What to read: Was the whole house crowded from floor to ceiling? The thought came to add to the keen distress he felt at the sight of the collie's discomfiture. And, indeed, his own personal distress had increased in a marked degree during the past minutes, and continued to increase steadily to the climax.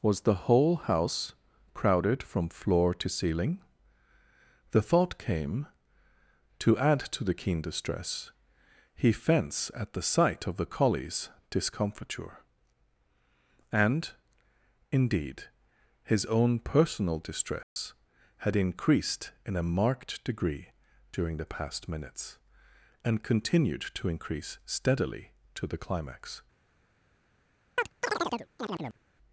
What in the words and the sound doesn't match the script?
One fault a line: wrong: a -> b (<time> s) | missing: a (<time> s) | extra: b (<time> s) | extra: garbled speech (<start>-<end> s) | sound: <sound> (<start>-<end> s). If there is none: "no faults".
wrong: felt -> fence (9.1 s)
sound: dropout (17.6-17.8 s)
sound: chirp (27.8-29.0 s)